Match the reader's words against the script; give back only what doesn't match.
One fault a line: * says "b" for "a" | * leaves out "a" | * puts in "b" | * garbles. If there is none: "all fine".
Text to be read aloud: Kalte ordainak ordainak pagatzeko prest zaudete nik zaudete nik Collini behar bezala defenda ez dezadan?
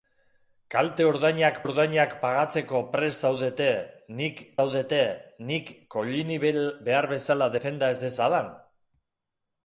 all fine